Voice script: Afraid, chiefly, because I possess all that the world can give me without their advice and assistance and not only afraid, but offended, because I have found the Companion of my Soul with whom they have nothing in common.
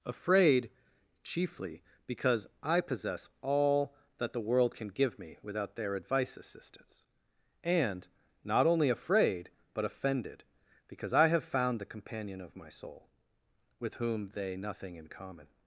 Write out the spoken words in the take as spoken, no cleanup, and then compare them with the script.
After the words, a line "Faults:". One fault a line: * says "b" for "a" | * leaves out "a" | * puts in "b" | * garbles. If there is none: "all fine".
Afraid, chiefly, because I possess all that the world can give me without their advice assistance and not only afraid, but offended, because I have found the Companion of my Soul with whom they nothing in common.
Faults:
* leaves out "and"
* leaves out "have"